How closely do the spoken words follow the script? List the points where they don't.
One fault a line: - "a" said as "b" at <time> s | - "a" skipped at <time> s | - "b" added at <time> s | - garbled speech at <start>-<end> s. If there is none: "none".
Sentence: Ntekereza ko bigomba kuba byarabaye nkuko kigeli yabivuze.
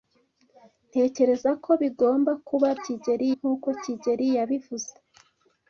- "byarabaye" said as "kigeli" at 2.8 s